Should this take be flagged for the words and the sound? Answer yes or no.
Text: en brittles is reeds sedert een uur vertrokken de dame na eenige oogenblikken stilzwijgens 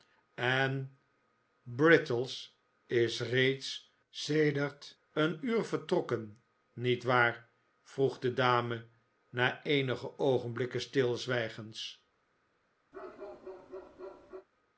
yes